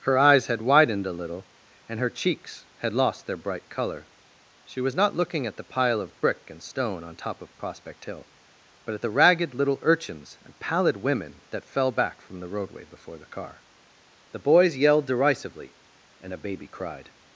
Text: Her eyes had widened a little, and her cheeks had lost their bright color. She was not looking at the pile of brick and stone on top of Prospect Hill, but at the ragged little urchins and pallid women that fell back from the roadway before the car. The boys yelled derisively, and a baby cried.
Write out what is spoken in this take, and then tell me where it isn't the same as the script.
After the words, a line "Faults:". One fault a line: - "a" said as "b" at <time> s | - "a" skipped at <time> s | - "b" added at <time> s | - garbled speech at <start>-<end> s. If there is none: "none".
Her eyes had widened a little, and her cheeks had lost their bright color. She was not looking at the pile of brick and stone on top of Prospect Hill, but at the ragged little urchins and pallid women that fell back from the roadway before the car. The boys yelled derisively, and a baby cried.
Faults:
none